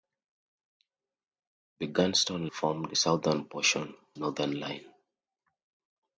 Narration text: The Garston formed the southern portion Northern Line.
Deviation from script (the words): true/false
false